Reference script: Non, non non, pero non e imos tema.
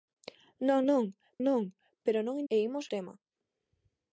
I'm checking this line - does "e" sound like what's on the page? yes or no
yes